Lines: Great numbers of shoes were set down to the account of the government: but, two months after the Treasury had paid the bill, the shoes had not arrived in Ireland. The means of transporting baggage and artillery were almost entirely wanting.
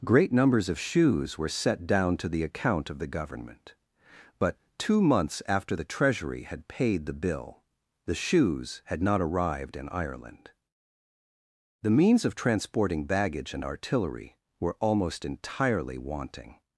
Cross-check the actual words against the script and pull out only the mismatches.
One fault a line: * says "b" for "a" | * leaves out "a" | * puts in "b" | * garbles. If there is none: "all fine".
all fine